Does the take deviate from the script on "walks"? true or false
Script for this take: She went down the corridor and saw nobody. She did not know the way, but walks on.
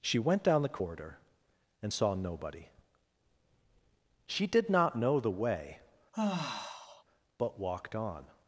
true